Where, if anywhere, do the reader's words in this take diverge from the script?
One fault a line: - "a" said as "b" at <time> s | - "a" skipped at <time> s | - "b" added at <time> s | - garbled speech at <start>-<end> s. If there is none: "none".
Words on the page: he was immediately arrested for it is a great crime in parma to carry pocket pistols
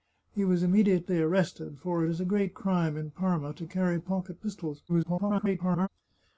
- garbled speech at 4.9-5.9 s